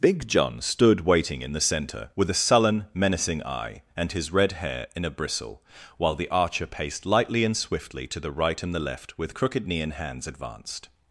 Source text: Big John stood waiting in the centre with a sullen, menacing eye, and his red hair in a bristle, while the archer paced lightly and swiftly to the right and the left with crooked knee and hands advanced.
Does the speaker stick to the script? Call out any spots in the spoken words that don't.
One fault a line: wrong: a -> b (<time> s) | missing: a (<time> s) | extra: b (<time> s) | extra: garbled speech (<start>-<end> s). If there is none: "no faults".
no faults